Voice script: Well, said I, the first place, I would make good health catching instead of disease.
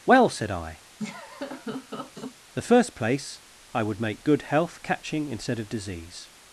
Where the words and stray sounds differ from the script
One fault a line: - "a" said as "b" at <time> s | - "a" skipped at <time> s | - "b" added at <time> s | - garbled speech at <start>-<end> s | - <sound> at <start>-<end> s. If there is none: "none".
- laugh at 1.0-2.4 s